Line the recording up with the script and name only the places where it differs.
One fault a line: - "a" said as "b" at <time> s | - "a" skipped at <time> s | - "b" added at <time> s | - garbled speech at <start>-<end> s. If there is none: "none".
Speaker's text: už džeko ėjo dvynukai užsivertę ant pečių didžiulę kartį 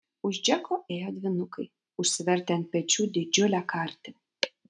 none